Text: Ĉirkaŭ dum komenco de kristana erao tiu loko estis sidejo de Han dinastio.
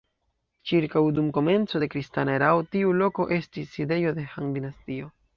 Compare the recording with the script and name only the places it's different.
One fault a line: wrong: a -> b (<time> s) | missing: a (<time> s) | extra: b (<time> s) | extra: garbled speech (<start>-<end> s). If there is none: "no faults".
no faults